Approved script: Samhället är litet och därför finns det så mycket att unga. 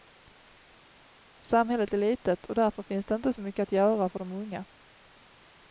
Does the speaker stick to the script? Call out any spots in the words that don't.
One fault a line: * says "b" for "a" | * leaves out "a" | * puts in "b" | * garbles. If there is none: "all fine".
* puts in "inte"
* puts in "göra för de"